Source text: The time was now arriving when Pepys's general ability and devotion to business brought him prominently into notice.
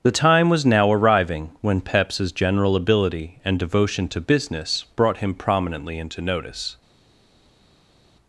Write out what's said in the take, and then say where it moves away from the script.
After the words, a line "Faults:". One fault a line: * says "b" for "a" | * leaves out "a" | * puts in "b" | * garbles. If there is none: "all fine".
The time was now arriving when Pepys's general ability and devotion to business brought him prominently into notice.
Faults:
all fine